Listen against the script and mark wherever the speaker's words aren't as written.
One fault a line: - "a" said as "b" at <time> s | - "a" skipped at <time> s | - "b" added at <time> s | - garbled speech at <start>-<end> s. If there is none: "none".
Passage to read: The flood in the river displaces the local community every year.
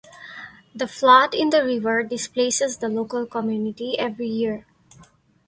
none